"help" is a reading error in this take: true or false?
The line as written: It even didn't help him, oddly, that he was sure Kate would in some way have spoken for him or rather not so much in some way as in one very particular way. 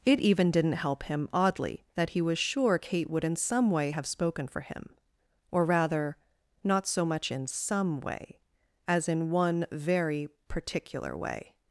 false